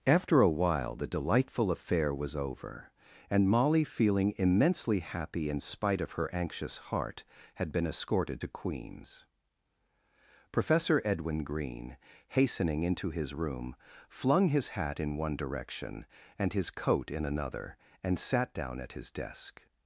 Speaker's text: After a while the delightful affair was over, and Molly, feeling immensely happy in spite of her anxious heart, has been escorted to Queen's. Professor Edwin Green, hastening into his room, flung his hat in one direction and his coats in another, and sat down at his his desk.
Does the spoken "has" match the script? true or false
false